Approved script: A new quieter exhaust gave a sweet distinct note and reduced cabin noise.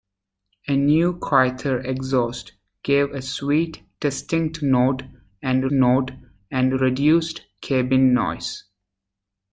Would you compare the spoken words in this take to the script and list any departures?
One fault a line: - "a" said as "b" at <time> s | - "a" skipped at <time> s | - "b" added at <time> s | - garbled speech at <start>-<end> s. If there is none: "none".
- "note and" added at 5.7 s